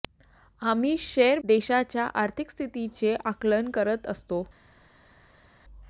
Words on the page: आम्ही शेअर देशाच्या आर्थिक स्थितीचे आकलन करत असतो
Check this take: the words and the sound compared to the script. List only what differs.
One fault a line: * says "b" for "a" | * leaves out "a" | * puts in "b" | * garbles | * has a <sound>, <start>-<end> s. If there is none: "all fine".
all fine